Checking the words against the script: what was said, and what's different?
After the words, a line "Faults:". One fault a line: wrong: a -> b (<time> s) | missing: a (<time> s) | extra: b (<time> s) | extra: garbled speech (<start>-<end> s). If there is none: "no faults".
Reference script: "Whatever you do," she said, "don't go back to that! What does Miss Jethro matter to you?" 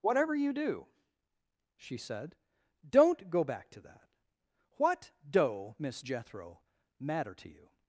"Whatever you do," she said, "don't go back to that! What doe Miss Jethro matter to you?"
Faults:
wrong: does -> doe (5.3 s)